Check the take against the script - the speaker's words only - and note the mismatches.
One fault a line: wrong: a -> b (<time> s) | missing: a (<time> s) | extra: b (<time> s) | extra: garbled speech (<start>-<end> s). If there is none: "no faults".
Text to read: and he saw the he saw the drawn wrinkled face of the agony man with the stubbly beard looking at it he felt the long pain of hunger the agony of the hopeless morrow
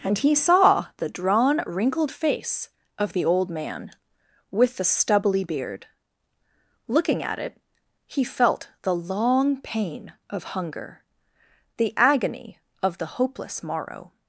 missing: he saw the (1.1 s)
wrong: agony -> old (3.2 s)